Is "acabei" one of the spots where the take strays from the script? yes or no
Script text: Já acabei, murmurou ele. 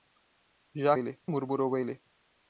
yes